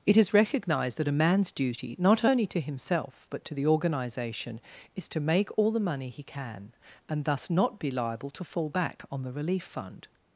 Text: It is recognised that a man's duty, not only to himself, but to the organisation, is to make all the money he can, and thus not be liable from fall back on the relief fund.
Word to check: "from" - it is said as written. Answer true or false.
false